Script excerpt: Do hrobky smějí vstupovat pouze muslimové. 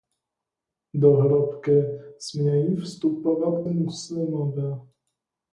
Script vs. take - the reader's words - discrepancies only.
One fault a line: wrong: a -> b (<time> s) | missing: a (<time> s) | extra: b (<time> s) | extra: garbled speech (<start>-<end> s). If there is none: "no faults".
missing: pouze (3.6 s)